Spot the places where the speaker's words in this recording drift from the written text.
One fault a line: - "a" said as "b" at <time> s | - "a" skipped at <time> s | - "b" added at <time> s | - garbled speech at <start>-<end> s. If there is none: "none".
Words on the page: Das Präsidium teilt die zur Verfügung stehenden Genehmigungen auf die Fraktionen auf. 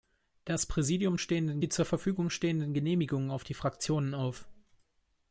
- "teilt" said as "stehenden" at 1.2 s